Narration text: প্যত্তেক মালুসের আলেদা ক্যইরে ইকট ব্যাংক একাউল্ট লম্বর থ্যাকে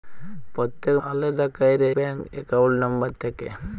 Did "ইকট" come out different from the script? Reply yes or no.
yes